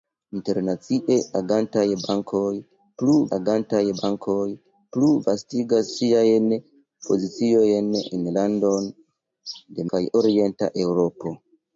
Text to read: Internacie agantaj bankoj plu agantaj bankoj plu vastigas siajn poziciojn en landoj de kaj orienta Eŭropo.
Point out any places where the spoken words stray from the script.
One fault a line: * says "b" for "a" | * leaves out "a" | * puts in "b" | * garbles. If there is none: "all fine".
all fine